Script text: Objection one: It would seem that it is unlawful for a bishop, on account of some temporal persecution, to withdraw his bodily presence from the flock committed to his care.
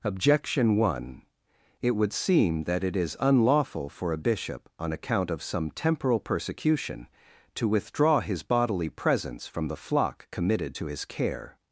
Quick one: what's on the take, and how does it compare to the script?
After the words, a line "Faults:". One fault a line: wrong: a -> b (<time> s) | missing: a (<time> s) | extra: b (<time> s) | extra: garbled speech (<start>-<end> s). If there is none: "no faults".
Objection one: It would seem that it is unlawful for a bishop, on account of some temporal persecution, to withdraw his bodily presence from the flock committed to his care.
Faults:
no faults